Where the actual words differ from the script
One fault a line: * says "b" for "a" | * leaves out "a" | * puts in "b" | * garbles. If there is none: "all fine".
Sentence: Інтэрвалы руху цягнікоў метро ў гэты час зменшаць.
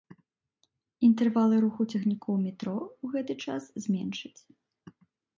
all fine